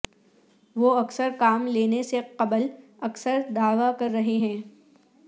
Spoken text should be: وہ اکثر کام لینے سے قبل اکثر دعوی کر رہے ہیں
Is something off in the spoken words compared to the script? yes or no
no